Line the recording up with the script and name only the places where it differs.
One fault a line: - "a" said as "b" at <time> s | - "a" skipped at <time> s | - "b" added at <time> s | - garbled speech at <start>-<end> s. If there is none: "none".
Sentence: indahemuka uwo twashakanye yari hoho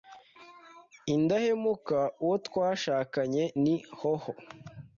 - "yari" said as "ni" at 3.6 s